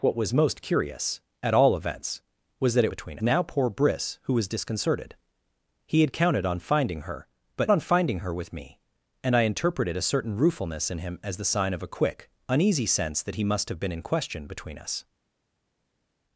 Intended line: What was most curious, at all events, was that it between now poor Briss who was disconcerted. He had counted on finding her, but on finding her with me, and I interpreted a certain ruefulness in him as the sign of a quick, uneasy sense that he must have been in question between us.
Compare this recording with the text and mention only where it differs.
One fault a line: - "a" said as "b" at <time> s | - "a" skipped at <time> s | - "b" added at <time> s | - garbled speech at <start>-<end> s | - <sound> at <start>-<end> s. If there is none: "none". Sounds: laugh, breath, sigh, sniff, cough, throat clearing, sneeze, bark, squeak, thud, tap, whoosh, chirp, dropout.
none